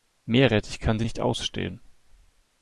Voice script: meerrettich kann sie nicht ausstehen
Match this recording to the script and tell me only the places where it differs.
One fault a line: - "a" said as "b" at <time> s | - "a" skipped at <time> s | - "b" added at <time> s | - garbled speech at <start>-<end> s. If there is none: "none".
none